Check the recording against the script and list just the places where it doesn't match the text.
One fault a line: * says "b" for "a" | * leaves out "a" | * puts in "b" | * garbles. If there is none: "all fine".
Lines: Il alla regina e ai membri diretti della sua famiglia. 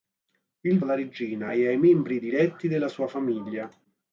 all fine